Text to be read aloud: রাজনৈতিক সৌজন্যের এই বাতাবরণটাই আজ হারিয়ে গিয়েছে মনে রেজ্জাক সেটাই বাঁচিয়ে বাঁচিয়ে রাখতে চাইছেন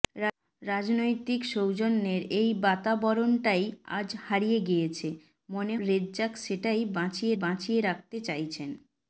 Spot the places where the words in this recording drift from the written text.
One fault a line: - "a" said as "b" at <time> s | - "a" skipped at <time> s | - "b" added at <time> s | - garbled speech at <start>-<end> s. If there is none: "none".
none